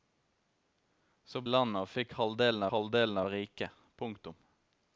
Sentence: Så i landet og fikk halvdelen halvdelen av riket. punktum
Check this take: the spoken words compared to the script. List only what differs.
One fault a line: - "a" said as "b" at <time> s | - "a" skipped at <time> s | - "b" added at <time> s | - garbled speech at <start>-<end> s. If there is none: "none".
none